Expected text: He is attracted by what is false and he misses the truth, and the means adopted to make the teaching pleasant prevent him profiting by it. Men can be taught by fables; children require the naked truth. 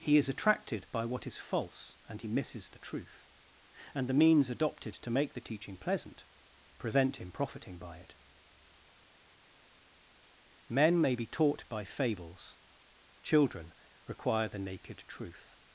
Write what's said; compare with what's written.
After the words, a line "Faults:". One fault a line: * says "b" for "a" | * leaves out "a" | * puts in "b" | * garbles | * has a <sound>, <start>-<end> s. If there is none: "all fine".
He is attracted by what is false and he misses the truth, and the means adopted to make the teaching pleasant prevent him profiting by it. Men may be taught by fables; children require the naked truth.
Faults:
* says "may" for "can"